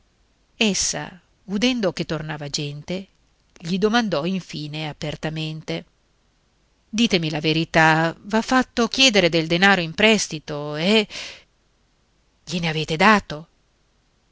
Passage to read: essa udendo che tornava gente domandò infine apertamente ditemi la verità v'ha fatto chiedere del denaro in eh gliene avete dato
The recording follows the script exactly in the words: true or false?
false